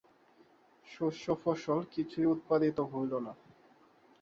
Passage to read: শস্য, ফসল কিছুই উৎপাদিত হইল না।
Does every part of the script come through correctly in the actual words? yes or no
yes